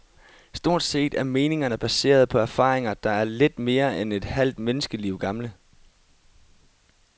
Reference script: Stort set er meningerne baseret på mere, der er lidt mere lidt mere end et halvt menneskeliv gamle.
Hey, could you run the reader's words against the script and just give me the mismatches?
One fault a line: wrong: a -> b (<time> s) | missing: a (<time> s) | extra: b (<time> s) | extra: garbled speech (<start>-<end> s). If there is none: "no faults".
wrong: mere -> erfaringer (2.4 s)
missing: lidt mere (4.0 s)